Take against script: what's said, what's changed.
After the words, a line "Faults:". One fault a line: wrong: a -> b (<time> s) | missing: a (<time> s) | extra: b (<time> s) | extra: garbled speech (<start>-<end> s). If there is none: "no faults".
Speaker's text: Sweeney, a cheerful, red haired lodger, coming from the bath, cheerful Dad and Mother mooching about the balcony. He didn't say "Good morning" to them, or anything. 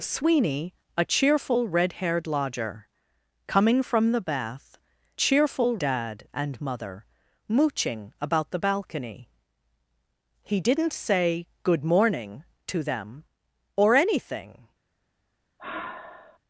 Sweeney, a cheerful, red haired lodger, coming from the bath, cheerful Dad and Mother mooching about the balcony. He didn't say "Good morning" to them, or anything.
Faults:
no faults